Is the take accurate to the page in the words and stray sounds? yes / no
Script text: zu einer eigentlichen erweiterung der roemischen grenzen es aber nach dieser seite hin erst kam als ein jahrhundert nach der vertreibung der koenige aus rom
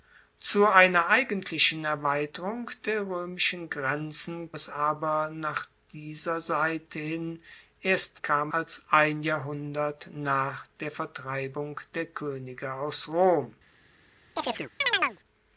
no